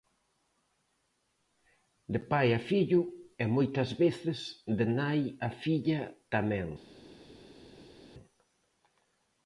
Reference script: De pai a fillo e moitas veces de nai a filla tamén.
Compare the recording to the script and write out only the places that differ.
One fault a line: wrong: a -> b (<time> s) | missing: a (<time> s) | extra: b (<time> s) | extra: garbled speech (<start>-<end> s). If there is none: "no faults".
no faults